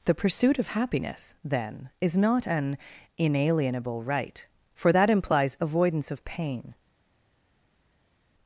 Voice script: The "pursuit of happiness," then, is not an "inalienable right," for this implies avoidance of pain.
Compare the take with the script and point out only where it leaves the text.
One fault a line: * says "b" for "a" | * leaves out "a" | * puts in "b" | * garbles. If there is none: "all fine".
* says "that" for "this"